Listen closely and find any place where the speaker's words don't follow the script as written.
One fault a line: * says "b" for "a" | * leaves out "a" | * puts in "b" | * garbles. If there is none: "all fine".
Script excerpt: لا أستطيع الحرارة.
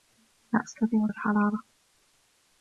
all fine